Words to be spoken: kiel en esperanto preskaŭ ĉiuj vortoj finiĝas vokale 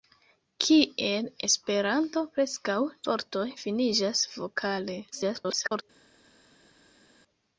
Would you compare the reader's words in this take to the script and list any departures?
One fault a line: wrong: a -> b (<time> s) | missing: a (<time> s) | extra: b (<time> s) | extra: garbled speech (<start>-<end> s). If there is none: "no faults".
missing: en (1.3 s)
missing: ĉiuj (2.8 s)
extra: garbled speech (5.1-5.8 s)